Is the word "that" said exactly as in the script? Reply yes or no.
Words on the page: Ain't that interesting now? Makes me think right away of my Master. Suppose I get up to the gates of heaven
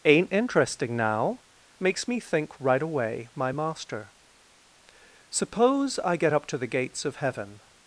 no